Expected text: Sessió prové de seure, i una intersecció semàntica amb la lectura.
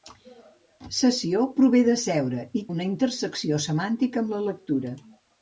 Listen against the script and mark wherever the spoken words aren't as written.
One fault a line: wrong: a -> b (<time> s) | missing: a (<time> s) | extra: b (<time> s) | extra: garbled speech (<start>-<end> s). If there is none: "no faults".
no faults